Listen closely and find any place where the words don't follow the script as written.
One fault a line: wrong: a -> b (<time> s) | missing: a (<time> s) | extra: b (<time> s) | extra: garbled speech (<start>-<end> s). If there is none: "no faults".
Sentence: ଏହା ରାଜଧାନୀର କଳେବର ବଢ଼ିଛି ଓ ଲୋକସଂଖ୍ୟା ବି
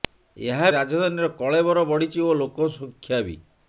no faults